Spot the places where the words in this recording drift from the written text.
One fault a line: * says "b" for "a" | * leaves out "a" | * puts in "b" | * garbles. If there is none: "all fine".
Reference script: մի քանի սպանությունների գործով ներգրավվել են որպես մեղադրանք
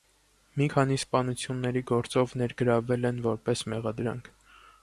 all fine